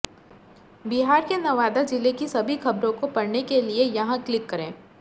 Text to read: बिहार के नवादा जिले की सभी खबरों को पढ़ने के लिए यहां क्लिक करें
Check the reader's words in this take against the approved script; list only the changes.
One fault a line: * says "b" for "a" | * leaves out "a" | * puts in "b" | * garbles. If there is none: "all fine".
all fine